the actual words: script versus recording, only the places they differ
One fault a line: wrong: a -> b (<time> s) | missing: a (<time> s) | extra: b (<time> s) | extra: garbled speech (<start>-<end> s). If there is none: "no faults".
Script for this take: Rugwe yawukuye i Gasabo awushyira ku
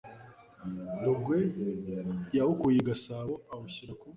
no faults